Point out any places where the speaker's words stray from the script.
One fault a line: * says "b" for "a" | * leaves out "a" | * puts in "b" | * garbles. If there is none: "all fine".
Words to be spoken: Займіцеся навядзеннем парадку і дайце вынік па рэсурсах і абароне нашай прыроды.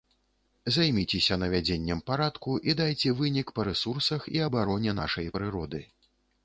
all fine